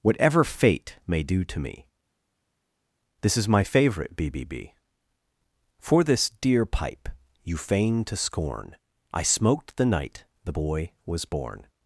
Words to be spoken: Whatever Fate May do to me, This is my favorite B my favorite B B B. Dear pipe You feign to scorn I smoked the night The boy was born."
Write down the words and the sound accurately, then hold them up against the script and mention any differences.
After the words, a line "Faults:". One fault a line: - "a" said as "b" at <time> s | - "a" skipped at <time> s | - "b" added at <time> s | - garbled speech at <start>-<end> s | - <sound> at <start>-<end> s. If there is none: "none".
Whatever Fate May do to me, This is my favorite B B B. For this dear pipe You feign to scorn I smoked the night The boy was born."
Faults:
- "my favorite" said as "B" at 4.3 s
- "B B" said as "For this" at 5.8 s